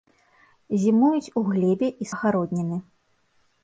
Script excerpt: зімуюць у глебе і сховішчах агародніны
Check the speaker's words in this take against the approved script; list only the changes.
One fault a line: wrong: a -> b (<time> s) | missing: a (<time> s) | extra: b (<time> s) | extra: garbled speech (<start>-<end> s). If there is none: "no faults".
missing: сховішчах (2.1 s)